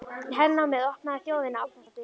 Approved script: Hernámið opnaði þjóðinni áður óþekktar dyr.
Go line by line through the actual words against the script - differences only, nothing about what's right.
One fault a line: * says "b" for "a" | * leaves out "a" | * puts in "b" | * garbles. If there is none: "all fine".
* leaves out "áður"